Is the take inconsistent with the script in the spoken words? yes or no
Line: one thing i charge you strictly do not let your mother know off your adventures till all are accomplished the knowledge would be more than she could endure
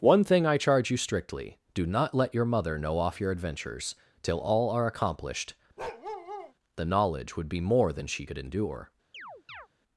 no